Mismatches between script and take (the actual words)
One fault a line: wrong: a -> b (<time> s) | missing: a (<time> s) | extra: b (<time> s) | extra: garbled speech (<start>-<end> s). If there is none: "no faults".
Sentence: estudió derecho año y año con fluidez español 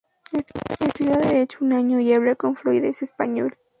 extra: un (1.6 s)
wrong: año -> habla (2.1 s)